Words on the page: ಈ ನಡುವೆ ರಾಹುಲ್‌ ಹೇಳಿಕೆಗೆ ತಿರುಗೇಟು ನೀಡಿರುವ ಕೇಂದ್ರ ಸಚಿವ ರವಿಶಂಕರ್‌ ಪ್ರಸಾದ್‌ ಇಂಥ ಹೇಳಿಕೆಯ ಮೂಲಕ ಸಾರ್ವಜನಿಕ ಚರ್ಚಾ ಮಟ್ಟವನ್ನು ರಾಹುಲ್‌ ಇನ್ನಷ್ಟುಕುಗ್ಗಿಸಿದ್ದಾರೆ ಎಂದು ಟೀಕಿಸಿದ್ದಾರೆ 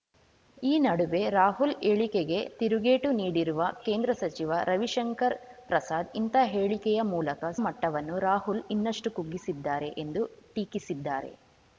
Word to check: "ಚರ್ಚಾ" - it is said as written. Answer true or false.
false